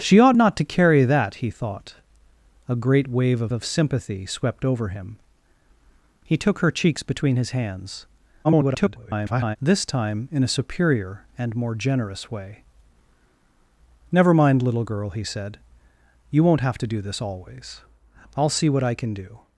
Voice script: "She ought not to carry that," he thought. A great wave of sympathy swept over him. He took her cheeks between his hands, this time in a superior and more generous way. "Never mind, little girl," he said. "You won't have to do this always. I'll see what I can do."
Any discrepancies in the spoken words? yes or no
yes